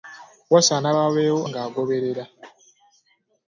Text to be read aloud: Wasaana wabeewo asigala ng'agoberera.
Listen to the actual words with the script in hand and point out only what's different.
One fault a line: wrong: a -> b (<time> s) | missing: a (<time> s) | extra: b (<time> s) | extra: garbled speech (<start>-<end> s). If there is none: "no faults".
missing: asigala (1.4 s)